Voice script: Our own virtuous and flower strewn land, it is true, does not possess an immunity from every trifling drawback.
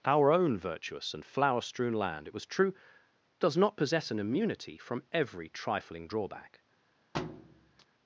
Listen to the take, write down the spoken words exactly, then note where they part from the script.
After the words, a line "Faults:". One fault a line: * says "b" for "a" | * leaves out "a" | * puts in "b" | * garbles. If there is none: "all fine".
Our own virtuous and flower strewn land, it was true, does not possess an immunity from every trifling drawback.
Faults:
* says "was" for "is"